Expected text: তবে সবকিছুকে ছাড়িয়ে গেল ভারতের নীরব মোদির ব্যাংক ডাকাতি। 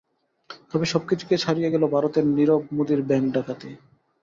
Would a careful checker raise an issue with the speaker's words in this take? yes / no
no